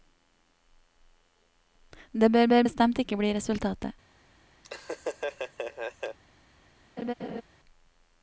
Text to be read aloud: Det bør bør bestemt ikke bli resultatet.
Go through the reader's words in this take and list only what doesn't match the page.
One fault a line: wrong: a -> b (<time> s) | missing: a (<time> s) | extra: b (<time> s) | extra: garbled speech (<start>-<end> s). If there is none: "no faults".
no faults